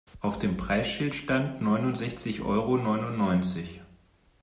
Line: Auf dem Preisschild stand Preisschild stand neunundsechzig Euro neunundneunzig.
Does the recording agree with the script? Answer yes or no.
no